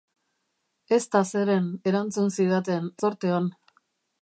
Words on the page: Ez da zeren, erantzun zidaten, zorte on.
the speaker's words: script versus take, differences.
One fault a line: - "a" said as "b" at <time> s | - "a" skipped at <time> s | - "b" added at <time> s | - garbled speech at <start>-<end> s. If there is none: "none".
none